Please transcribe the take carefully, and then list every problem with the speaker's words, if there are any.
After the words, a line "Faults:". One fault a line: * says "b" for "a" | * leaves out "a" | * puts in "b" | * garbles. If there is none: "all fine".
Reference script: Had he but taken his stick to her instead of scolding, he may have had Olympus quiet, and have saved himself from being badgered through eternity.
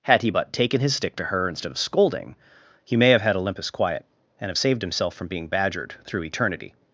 Had he but taken his stick to her instead of scolding, he may have had Olympus quiet, and have saved himself from being badgered through eternity.
Faults:
all fine